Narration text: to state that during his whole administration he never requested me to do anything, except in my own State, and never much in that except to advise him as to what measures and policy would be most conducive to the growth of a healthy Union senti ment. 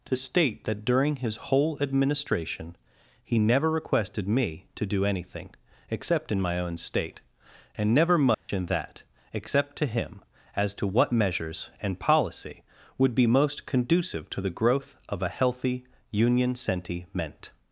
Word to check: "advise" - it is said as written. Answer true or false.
false